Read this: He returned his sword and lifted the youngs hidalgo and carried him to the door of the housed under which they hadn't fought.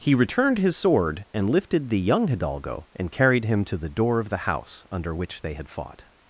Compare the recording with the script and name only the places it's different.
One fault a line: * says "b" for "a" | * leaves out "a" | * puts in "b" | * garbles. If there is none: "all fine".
* says "young" for "youngs"
* says "house" for "housed"
* says "had" for "hadn't"